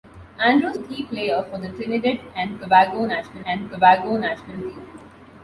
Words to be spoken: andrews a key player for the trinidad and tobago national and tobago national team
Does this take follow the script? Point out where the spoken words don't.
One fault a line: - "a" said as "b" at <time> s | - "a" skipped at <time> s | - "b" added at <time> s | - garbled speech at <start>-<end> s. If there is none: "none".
none